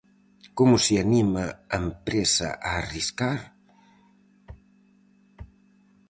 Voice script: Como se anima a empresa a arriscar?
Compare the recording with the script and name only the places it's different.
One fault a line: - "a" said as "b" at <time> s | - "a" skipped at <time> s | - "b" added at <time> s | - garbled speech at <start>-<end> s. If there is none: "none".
none